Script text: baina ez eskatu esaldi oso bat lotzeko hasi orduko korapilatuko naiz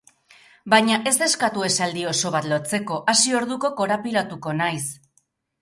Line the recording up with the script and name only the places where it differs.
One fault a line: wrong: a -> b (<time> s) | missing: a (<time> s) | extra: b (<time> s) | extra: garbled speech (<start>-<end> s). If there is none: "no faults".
no faults